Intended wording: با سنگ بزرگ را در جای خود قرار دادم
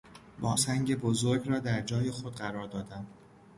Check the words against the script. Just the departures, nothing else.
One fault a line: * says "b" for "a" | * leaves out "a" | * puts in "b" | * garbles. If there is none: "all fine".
all fine